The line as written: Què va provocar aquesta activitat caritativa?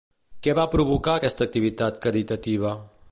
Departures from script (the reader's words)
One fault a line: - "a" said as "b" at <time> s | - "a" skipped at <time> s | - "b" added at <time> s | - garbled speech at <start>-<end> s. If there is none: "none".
none